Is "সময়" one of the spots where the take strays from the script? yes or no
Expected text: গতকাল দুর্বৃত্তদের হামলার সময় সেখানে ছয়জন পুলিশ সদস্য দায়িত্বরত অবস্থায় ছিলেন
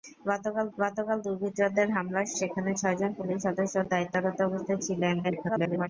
yes